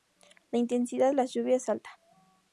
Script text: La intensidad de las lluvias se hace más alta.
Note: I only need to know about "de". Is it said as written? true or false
false